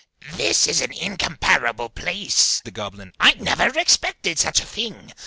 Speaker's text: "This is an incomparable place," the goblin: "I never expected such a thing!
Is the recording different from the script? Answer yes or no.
no